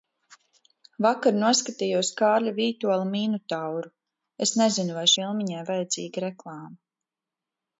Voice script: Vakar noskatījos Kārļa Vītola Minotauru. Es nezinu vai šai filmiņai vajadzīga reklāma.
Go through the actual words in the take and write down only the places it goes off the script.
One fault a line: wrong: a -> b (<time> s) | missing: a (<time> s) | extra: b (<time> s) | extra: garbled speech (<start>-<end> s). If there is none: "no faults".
missing: šai (5.1 s)